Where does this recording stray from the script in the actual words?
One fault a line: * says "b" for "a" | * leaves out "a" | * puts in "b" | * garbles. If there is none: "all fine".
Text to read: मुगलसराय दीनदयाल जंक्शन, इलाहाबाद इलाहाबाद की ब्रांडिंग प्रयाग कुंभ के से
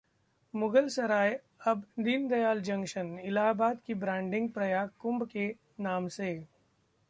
* puts in "अब"
* leaves out "इलाहाबाद"
* puts in "नाम"